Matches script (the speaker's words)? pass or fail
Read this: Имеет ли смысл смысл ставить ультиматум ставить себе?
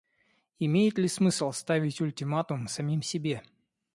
fail